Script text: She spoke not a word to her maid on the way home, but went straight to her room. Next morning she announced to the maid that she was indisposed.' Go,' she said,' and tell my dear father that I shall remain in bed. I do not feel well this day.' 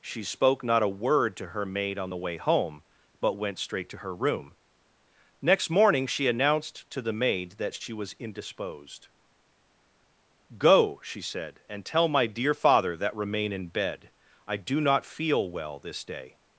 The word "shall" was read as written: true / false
false